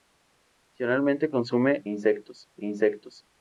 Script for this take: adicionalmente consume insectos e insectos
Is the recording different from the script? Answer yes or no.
no